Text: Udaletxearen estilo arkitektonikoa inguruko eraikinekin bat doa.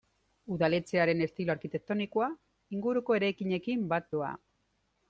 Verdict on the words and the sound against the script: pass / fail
pass